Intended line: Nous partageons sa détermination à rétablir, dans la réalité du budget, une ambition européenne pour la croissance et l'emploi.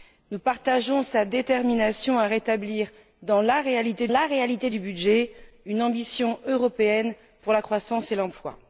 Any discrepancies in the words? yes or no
yes